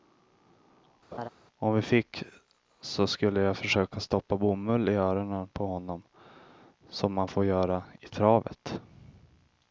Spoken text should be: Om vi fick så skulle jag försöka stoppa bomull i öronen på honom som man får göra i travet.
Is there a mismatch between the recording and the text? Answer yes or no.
no